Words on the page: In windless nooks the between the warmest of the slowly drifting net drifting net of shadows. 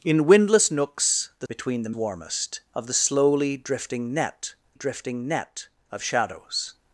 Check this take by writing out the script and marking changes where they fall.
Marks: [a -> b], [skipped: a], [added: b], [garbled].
In windless nooks the between the warmest of the slowly drifting net drifting net of shadows.